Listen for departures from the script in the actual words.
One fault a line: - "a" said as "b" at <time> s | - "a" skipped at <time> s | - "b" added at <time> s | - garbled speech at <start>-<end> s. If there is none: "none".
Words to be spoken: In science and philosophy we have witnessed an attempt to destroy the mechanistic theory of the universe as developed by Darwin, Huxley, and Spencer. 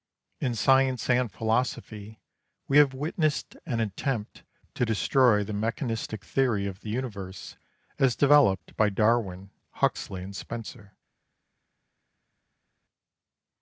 none